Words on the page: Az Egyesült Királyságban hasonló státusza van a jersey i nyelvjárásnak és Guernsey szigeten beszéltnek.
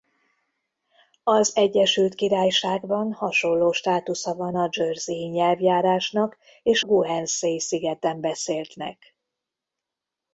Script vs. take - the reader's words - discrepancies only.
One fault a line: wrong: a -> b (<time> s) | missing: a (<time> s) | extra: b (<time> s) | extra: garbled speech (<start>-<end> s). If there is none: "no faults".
no faults